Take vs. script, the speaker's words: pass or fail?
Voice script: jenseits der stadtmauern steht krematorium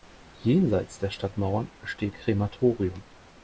pass